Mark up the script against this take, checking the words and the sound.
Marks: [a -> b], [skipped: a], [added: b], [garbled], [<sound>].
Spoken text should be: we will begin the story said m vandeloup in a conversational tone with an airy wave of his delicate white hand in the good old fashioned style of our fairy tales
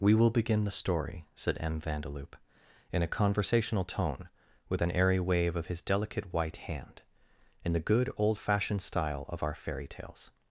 we will begin the story said m vandeloup in a conversational tone with an airy wave of his delicate white hand in the good old fashioned style of our fairy tales